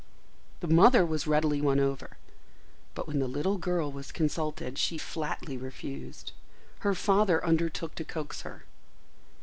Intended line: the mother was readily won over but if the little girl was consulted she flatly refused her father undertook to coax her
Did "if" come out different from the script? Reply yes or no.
yes